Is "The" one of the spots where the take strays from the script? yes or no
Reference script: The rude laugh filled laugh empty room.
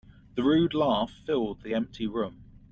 no